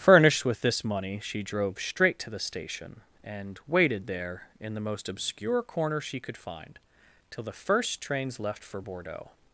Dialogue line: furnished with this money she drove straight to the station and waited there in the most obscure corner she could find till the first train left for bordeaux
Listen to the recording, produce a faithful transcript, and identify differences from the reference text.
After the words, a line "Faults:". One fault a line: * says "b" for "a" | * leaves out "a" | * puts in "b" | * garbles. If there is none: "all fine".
furnished with this money she drove straight to the station and waited there in the most obscure corner she could find till the first trains left for bordeaux
Faults:
* says "trains" for "train"